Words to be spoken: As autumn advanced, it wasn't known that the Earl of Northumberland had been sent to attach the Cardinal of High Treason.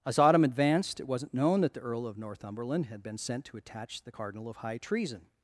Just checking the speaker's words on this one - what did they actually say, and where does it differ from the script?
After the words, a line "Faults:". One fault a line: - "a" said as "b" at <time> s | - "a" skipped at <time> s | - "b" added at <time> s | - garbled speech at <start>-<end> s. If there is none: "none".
As autumn advanced, it wasn't known that the Earl of Northumberland had been sent to attach the Cardinal of High Treason.
Faults:
none